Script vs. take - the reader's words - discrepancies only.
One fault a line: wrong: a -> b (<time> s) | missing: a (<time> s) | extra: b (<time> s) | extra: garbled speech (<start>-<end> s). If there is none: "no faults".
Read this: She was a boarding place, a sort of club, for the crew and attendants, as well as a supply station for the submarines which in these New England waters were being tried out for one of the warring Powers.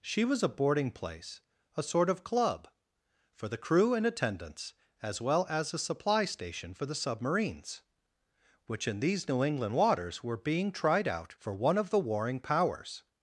no faults